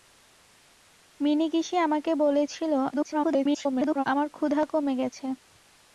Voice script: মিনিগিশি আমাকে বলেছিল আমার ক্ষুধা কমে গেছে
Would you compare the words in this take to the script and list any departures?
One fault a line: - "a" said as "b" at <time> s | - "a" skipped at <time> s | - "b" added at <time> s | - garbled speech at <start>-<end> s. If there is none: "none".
- garbled speech at 2.9-4.0 s